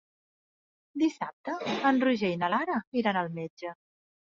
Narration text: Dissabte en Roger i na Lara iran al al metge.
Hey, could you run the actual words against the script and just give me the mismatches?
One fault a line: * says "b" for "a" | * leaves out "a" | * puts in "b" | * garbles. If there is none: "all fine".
* leaves out "al"